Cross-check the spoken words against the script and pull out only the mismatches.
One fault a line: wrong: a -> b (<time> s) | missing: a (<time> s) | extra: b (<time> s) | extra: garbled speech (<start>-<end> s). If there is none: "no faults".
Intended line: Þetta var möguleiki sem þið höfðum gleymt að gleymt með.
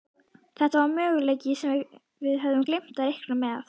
wrong: þið -> við (2.3 s)
wrong: gleymt -> reikna (3.1 s)